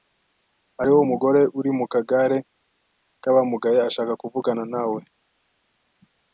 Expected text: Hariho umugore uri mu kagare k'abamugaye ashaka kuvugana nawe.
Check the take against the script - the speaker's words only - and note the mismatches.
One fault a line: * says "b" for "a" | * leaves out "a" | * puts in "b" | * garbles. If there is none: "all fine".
all fine